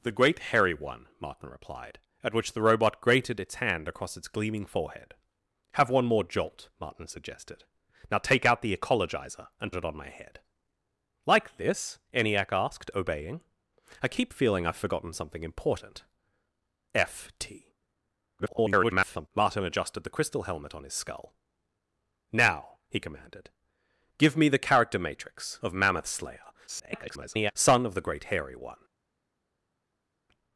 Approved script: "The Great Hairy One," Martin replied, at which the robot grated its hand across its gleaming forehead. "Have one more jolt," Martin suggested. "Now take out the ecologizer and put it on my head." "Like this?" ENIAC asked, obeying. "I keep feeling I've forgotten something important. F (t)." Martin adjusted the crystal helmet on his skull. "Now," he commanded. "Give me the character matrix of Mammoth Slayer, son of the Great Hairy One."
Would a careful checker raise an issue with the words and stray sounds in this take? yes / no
yes